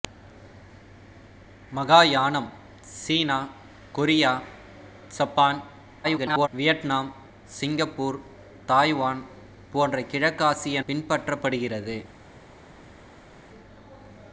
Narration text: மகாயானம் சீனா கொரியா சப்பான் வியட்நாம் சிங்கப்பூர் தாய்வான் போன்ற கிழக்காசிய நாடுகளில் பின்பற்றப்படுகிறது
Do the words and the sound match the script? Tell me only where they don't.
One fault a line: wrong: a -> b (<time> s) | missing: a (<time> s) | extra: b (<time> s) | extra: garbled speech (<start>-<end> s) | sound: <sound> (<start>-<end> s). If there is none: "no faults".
extra: garbled speech (6.0-6.5 s)
missing: நாடுகளில் (10.8 s)